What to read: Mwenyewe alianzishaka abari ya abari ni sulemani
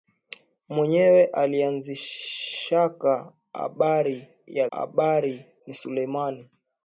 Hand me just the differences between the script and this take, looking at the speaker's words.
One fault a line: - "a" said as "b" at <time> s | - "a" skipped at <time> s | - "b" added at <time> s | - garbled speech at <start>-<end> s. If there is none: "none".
none